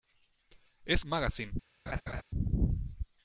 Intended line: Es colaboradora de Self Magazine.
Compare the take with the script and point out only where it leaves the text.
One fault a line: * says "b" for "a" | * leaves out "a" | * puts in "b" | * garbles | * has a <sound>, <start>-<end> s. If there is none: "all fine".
* leaves out "colaboradora de Self"
* has a laugh, 1.9-2.2 s